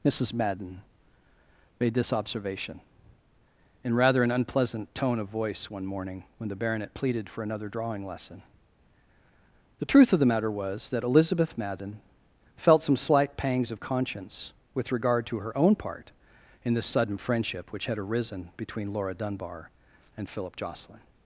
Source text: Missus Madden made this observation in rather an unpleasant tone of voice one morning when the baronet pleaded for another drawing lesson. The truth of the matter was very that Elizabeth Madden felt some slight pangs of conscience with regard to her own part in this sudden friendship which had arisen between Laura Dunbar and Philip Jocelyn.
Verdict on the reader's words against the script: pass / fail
fail